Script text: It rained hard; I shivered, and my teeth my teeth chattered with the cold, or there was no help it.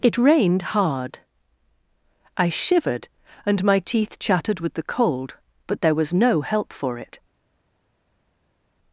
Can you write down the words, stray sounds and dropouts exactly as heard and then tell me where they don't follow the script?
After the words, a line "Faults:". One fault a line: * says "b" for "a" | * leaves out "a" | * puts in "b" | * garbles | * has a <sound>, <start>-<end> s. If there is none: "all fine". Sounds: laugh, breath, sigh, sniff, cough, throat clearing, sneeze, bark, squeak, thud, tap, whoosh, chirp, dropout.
It rained hard; I shivered, and my teeth chattered with the cold, but there was no help for it.
Faults:
* leaves out "my teeth"
* says "but" for "or"
* puts in "for"